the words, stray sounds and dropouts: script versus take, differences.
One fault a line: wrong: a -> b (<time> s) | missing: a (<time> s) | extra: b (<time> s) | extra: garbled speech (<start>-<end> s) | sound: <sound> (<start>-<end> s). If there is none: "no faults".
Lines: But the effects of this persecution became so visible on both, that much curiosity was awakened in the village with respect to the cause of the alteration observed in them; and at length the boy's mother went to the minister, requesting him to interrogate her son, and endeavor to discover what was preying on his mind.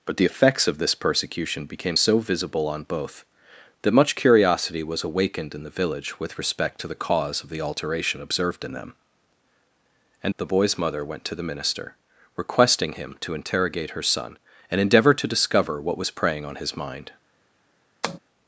missing: at length (10.3 s)
sound: tap (18.0-18.2 s)